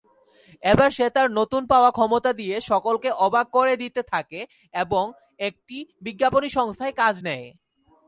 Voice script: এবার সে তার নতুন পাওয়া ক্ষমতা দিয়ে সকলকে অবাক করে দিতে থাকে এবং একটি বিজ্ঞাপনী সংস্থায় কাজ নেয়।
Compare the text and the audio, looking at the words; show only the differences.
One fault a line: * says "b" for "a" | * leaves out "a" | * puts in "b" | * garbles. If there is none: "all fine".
all fine